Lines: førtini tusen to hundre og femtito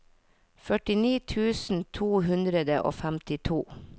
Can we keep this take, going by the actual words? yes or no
yes